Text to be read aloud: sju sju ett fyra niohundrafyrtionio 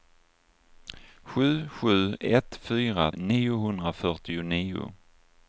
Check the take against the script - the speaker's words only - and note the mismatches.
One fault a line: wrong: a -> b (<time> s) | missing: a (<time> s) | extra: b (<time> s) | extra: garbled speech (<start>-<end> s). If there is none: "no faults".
no faults